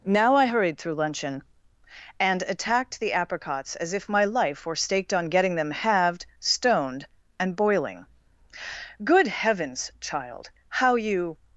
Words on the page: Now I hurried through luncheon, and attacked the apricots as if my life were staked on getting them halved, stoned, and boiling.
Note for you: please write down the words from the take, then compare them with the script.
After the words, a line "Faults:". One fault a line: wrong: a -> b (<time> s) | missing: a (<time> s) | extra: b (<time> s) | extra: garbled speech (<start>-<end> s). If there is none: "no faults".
Now I hurried through luncheon, and attacked the apricots as if my life were staked on getting them halved, stoned, and boiling. "Good Heavens, child, how you
Faults:
extra: Good Heavens child how you (9.0 s)